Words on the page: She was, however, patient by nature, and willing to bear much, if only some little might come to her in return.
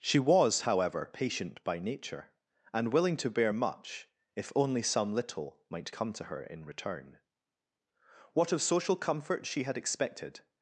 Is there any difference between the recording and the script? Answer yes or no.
yes